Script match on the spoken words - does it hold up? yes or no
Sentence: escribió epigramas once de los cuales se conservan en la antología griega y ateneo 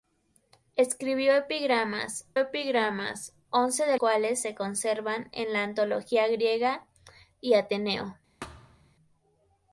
no